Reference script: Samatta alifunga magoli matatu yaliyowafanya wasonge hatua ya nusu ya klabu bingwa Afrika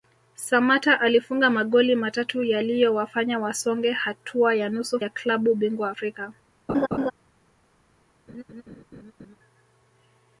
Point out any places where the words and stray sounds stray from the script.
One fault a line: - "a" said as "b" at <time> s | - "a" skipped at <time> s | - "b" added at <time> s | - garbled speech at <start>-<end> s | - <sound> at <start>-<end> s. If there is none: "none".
- laugh at 6.7-7.1 s
- laugh at 8.3-9.4 s